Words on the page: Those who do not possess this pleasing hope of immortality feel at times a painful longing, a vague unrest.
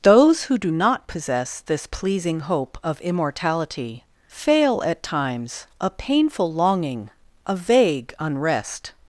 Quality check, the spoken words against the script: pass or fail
fail